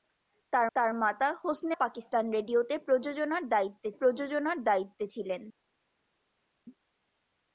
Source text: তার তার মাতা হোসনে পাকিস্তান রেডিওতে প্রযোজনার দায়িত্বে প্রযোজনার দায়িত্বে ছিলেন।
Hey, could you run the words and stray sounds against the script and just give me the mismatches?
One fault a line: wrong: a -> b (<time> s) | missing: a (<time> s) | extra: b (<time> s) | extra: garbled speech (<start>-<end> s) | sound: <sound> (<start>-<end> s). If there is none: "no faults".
no faults